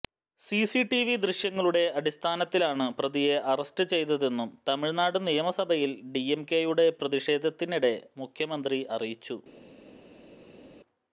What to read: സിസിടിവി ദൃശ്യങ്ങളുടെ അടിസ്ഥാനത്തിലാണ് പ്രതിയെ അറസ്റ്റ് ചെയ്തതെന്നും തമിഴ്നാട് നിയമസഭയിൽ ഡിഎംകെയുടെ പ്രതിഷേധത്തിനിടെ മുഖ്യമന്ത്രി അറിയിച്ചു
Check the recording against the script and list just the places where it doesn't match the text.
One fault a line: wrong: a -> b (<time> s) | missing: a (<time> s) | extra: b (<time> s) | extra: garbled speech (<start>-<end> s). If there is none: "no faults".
no faults